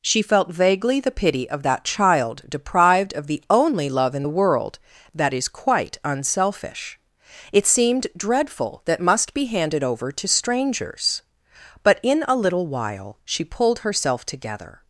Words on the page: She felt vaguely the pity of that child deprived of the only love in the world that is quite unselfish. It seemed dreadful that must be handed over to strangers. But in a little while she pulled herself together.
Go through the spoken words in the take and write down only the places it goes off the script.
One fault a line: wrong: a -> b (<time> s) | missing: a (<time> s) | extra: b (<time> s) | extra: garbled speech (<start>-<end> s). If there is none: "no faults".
no faults